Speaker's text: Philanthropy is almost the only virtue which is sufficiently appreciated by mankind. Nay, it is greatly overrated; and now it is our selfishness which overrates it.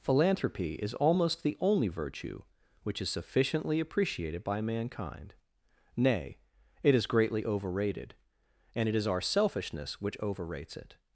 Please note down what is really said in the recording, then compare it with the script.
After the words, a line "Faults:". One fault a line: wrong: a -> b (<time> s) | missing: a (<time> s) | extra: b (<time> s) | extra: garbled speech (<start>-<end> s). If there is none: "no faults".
Philanthropy is almost the only virtue which is sufficiently appreciated by mankind. Nay, it is greatly overrated; and it is our selfishness which overrates it.
Faults:
missing: now (8.9 s)